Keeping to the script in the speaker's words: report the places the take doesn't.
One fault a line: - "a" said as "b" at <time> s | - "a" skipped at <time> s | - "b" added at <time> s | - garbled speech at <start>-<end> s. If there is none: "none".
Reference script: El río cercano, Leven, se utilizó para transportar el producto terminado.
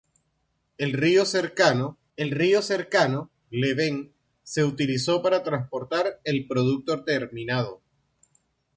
- "el río cercano" added at 2.2 s